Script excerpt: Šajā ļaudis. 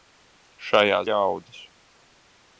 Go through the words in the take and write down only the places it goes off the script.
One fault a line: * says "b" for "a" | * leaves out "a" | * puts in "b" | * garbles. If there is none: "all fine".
all fine